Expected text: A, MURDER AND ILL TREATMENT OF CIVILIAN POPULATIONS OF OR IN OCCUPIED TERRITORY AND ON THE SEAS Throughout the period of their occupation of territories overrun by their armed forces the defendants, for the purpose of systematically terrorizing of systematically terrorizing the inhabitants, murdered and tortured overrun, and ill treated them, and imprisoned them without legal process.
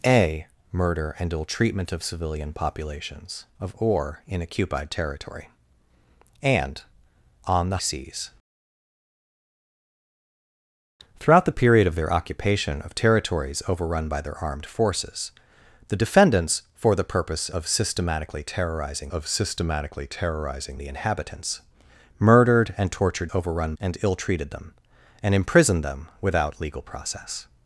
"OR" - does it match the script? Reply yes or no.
yes